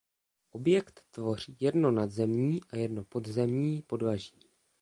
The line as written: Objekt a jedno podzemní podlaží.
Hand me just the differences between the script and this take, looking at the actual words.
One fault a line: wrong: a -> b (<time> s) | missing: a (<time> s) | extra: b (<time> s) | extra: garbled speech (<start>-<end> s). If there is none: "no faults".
extra: tvoří jedno nadzemní (1.1 s)